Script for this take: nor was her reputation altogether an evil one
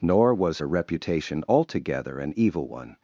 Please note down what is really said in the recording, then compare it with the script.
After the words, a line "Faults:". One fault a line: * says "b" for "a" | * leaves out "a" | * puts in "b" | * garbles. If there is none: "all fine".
nor was her reputation altogether an evil one
Faults:
all fine